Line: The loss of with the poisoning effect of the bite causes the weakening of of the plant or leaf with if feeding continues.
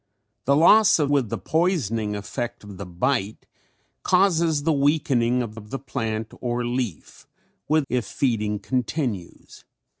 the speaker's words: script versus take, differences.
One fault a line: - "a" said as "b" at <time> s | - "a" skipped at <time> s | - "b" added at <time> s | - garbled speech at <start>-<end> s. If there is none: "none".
none